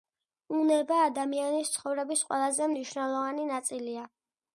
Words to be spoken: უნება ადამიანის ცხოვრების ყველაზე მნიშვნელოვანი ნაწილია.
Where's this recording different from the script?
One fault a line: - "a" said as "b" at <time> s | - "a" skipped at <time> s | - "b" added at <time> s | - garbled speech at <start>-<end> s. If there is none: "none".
none